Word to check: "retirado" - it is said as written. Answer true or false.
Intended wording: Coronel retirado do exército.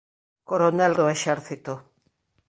false